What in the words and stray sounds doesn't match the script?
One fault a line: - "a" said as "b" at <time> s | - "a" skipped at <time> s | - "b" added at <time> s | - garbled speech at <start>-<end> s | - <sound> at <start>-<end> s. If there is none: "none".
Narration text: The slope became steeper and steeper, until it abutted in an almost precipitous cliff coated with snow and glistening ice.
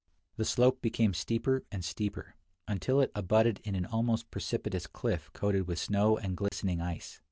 - dropout at 6.5-6.5 s